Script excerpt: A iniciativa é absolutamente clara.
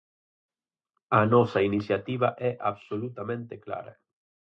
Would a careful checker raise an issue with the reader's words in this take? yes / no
yes